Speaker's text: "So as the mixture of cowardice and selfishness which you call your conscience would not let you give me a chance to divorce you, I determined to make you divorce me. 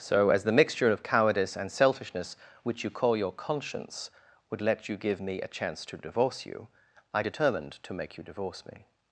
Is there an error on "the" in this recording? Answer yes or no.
no